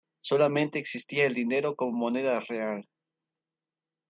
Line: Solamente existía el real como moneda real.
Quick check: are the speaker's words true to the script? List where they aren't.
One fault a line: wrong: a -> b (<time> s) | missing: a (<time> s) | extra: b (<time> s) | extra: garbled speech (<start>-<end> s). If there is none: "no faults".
wrong: real -> dinero (1.4 s)